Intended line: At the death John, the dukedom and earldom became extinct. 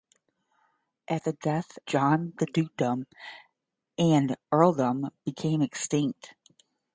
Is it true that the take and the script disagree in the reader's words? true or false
false